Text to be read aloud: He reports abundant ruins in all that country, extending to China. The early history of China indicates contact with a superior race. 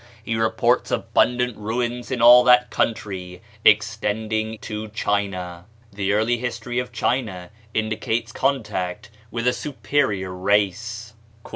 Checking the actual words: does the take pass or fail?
pass